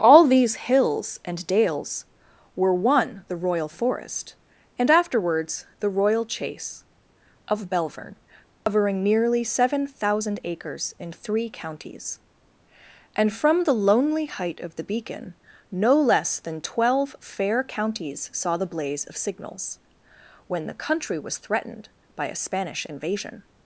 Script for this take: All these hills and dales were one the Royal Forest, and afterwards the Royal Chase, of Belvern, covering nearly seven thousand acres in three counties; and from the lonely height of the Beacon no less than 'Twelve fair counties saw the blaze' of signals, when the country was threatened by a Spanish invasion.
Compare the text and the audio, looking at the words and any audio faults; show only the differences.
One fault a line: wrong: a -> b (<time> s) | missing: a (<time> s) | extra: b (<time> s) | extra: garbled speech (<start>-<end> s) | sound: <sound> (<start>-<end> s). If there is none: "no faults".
sound: dropout (8.5-8.7 s)